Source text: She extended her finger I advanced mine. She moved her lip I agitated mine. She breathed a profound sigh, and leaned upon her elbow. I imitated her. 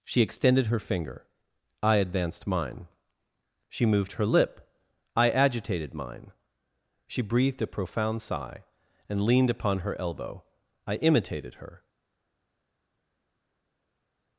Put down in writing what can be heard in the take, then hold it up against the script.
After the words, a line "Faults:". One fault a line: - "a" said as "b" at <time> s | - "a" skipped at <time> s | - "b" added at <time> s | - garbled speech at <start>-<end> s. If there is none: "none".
She extended her finger I advanced mine. She moved her lip I agitated mine. She breathed a profound sigh, and leaned upon her elbow. I imitated her.
Faults:
none